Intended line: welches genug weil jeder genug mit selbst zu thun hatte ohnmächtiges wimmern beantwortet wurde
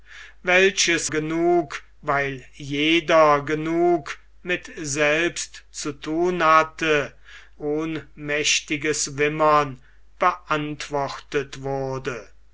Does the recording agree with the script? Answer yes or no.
yes